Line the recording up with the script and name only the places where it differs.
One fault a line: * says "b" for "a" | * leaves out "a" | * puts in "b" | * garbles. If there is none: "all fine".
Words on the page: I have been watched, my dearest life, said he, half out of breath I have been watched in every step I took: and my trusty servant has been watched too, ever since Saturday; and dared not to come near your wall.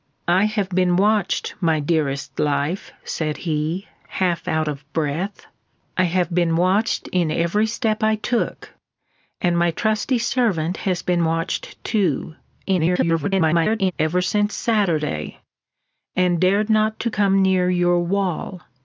* garbles